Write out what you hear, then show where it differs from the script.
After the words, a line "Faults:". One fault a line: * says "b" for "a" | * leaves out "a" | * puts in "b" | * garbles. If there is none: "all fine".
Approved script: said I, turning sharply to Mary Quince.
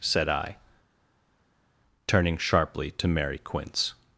said I, turning sharply to Mary Quince.
Faults:
all fine